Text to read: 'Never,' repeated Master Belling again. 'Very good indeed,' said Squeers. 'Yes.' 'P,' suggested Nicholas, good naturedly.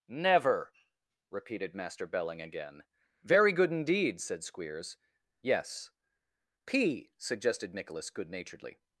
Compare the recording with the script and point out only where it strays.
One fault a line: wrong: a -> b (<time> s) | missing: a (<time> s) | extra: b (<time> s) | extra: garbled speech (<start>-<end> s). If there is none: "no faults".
no faults